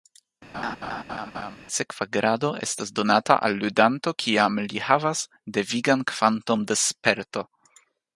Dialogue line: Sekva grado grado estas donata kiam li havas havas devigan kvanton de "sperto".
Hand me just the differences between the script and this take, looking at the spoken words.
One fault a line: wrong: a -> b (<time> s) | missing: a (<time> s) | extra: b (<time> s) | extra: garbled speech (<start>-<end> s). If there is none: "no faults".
missing: grado (2.5 s)
extra: al ludanto (3.5 s)
missing: havas (5.2 s)